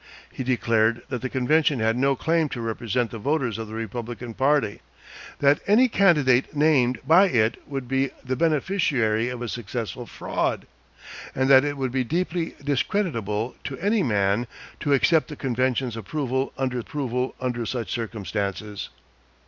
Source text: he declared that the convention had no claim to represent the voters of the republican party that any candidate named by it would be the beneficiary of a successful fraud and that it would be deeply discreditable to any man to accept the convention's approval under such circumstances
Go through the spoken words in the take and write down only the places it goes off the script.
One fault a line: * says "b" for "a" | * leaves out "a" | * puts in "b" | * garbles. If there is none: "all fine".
* puts in "approval under"